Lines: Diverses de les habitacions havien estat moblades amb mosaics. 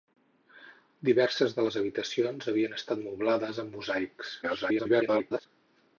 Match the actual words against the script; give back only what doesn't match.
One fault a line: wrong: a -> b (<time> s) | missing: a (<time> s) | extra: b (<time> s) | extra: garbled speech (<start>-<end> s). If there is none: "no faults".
extra: garbled speech (4.4-5.5 s)